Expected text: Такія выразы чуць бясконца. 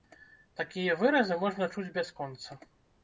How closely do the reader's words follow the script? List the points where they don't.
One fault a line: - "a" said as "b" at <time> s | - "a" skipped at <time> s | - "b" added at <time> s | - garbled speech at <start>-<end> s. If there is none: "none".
- "можна" added at 1.4 s